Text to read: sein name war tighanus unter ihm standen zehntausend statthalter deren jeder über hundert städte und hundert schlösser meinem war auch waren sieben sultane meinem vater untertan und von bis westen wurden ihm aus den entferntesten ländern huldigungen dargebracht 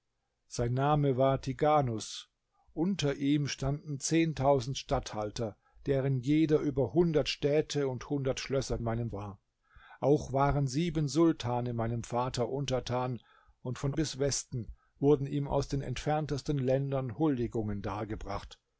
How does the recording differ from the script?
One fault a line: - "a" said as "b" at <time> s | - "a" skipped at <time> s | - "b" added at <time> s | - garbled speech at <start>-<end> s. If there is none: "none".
none